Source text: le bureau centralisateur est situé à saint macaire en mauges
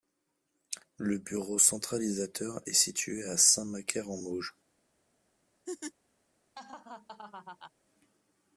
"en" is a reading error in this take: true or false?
false